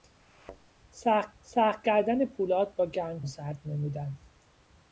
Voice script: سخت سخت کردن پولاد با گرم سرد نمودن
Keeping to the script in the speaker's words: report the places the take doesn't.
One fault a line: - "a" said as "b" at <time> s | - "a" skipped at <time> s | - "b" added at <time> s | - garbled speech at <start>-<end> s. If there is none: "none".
none